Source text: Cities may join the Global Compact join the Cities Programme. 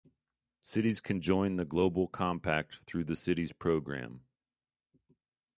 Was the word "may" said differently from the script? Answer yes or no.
yes